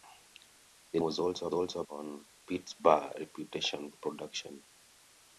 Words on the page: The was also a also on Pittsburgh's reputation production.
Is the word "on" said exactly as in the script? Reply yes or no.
yes